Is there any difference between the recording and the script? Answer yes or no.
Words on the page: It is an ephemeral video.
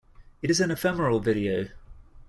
no